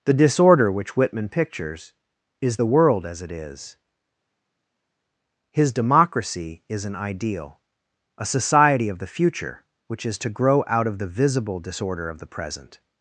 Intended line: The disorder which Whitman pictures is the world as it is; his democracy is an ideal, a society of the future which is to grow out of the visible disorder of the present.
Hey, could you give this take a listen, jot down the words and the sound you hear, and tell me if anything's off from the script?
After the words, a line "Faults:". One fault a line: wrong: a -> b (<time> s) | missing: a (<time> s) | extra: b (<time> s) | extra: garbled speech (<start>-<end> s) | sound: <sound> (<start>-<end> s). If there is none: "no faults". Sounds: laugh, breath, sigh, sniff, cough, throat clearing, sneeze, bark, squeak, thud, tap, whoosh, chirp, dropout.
The disorder which Whitman pictures is the world as it is; his democracy is an ideal, a society of the future which is to grow out of the visible disorder of the present.
Faults:
no faults